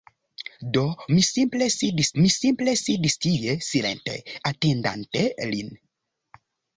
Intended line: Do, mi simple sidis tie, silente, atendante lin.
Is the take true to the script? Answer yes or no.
no